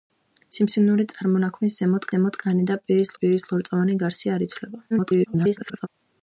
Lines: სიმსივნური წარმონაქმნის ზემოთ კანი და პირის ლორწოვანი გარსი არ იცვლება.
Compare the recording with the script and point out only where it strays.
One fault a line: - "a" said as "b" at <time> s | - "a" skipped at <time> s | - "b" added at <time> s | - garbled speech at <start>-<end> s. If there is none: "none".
- "ზემოთ" added at 2.1 s
- "პირის" added at 3.2 s
- garbled speech at 4.9-5.9 s